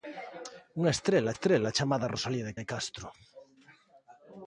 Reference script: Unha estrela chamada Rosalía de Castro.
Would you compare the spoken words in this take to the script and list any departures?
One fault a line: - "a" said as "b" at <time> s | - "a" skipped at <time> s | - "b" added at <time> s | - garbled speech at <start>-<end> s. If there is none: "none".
- "estrela" added at 1.3 s
- "de" added at 2.6 s